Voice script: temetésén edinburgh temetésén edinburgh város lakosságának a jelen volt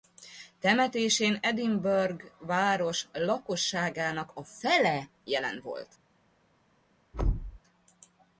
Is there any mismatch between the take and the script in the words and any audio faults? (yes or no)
yes